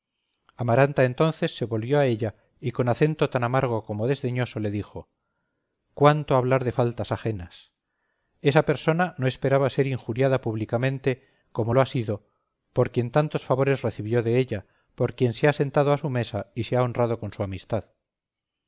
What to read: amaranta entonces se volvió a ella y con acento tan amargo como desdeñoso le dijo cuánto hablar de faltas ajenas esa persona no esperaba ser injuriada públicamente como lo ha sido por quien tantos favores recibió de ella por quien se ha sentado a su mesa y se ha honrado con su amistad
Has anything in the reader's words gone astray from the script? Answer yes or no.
no